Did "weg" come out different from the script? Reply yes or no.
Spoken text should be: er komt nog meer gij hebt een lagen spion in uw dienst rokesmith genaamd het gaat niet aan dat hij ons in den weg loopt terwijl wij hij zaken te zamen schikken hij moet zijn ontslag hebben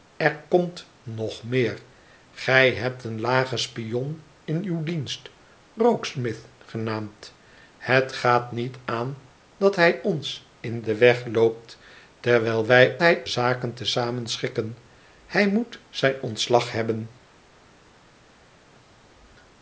no